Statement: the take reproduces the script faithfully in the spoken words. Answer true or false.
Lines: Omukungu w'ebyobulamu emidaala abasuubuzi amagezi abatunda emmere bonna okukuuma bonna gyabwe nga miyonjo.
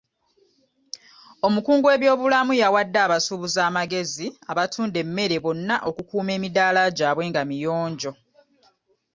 false